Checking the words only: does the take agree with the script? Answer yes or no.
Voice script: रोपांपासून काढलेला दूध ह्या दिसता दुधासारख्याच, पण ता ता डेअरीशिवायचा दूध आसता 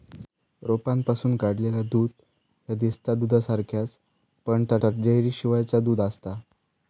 yes